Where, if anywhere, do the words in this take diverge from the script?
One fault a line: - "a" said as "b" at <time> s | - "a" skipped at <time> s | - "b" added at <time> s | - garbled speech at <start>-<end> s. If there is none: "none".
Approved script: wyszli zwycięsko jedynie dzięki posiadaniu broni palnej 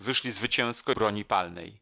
- "jedynie dzięki posiadaniu" skipped at 0.9 s